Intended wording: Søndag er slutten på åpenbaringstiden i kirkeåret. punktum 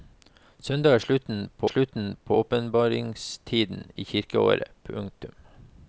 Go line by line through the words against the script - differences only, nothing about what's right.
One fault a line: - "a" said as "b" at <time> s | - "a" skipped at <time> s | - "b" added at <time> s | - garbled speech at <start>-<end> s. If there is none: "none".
- "slutten på" added at 1.6 s